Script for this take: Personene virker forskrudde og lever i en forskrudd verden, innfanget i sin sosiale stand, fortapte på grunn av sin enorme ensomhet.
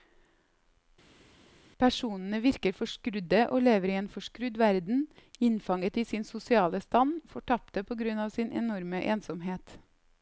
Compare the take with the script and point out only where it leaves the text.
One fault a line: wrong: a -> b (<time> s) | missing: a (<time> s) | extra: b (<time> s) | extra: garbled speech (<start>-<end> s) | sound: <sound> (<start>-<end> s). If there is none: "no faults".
no faults